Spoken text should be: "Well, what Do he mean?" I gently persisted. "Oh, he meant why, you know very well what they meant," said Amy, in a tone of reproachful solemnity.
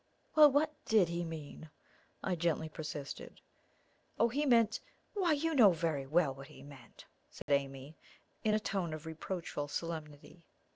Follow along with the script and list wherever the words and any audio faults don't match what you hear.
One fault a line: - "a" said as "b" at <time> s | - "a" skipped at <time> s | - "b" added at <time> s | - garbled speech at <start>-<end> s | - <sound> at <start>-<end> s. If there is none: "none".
- "Do" said as "DID" at 0.8 s
- "they" said as "he" at 6.5 s
- dropout at 7.4-7.5 s